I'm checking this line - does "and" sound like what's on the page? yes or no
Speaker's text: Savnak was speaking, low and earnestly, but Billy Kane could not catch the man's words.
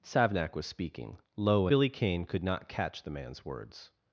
no